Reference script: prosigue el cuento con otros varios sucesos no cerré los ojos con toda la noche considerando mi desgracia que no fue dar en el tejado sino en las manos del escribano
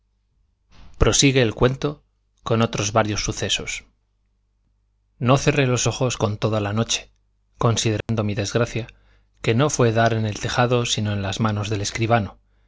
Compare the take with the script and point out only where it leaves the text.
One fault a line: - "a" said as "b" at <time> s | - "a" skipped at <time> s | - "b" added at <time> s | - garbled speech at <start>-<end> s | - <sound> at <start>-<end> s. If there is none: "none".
- dropout at 8.0-8.1 s